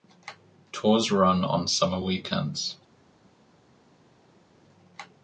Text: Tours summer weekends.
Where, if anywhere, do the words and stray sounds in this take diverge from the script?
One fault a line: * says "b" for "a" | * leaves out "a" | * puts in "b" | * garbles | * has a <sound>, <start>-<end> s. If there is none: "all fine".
* puts in "run on"